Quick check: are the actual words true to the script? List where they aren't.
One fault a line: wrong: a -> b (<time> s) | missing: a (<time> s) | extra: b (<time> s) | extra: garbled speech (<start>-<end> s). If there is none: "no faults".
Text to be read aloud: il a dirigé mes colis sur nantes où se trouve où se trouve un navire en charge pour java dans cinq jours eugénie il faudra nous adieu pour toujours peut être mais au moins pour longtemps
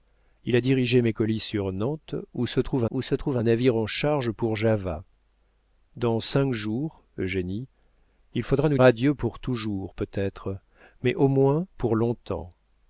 no faults